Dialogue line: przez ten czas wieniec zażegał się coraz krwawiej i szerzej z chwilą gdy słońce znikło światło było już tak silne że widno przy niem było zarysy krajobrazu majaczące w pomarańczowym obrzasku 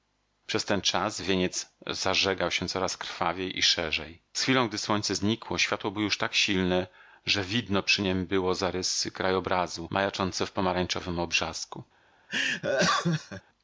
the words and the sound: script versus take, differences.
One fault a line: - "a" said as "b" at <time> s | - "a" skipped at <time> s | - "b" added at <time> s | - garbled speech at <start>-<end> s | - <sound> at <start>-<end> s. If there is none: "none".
- laugh at 12.3-13.4 s